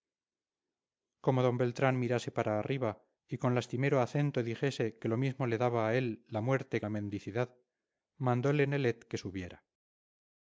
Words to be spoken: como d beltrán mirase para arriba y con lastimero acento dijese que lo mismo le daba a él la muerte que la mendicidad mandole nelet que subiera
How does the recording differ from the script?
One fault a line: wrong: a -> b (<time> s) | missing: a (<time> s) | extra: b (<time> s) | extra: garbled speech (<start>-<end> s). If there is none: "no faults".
missing: que (6.8 s)